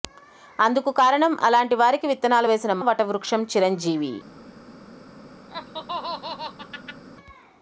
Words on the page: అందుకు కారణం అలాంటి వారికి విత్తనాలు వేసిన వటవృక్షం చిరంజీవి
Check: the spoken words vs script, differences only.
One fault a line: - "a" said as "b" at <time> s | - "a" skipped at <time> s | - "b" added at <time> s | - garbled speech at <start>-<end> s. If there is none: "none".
none